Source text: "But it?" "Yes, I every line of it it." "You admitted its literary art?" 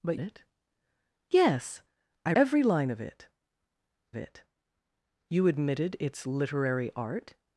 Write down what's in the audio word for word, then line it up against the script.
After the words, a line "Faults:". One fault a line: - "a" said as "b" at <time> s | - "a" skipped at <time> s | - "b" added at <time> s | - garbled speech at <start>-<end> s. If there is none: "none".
"But it?" "Yes, I every line of it it." "You admitted its literary art?"
Faults:
none